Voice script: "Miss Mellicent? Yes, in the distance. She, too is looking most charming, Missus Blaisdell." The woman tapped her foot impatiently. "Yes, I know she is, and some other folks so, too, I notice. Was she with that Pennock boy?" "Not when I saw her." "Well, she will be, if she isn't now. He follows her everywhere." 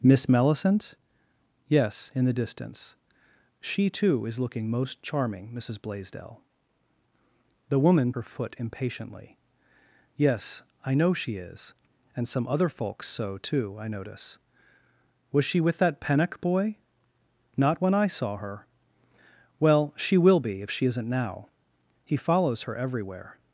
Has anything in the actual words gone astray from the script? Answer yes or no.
yes